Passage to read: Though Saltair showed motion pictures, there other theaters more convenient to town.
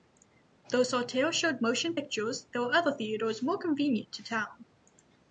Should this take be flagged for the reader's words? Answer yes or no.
yes